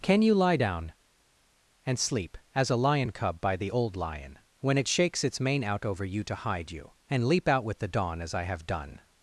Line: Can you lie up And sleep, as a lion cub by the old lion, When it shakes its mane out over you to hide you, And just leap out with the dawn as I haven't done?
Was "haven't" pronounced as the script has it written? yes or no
no